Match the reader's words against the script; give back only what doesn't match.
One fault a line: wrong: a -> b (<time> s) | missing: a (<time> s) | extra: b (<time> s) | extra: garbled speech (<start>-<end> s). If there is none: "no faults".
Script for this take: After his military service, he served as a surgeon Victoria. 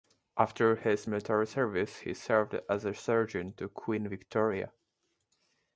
extra: to Queen (3.5 s)